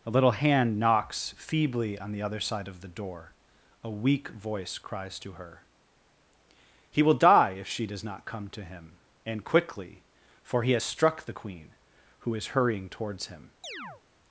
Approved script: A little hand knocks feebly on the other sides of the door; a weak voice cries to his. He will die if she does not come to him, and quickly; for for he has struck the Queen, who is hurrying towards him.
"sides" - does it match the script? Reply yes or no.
no